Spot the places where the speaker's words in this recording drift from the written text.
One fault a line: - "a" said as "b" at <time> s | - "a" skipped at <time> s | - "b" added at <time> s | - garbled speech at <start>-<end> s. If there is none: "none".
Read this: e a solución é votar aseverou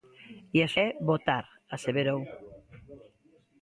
- "solución" skipped at 0.7 s